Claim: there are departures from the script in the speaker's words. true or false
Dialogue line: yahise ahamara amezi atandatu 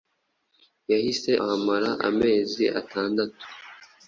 false